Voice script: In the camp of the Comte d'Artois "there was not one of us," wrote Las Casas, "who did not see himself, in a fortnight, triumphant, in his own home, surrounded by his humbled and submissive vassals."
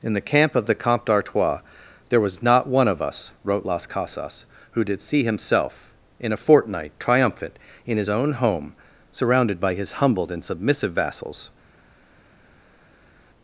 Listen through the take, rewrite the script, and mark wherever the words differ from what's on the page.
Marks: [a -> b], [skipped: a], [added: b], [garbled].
In the camp of the Comte d'Artois "there was not one of us," wrote Las Casas, "who did [skipped: not] see himself, in a fortnight, triumphant, in his own home, surrounded by his humbled and submissive vassals."